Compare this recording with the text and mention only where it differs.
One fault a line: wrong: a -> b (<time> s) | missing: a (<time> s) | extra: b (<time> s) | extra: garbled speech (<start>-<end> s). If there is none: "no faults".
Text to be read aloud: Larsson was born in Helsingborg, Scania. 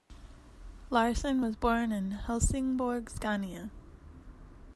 no faults